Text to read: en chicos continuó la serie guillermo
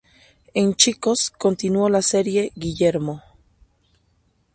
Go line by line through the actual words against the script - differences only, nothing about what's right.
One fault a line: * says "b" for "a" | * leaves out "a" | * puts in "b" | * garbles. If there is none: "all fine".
all fine